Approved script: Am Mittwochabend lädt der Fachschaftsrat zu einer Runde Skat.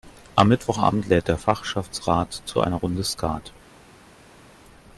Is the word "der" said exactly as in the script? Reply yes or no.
yes